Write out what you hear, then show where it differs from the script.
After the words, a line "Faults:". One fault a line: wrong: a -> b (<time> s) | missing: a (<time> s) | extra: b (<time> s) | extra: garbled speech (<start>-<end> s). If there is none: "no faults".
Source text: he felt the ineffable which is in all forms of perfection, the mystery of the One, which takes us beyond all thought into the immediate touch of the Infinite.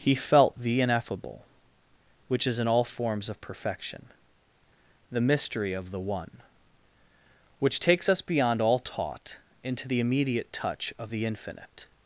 he felt the ineffable which is in all forms of perfection, the mystery of the One, which takes us beyond all taught into the immediate touch of the Infinite.
Faults:
wrong: thought -> taught (8.8 s)